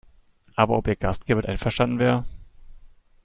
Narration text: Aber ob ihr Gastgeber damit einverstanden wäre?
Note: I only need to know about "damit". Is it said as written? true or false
false